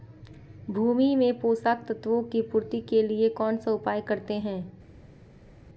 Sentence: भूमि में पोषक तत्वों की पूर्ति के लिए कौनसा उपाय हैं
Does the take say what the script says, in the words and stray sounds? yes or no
no